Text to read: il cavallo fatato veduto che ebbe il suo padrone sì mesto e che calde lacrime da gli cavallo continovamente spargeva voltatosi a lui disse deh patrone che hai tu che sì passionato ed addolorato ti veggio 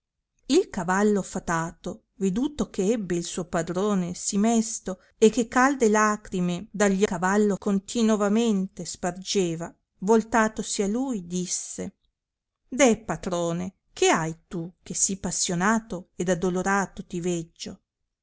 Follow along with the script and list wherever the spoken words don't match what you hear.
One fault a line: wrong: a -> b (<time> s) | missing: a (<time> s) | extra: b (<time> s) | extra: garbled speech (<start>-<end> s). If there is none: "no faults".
no faults